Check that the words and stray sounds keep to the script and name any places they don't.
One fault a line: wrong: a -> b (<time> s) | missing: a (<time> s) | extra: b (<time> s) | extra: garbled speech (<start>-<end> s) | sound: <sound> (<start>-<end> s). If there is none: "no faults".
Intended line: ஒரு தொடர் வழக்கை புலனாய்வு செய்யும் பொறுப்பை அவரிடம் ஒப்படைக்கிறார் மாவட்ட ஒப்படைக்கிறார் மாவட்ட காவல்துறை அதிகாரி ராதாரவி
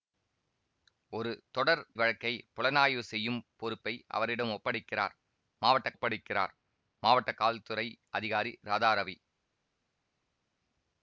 no faults